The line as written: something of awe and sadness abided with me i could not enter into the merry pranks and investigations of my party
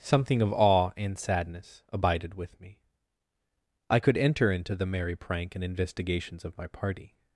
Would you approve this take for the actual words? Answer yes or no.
no